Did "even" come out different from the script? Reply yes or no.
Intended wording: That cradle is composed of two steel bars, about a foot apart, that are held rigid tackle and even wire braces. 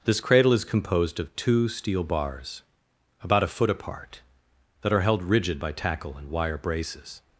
yes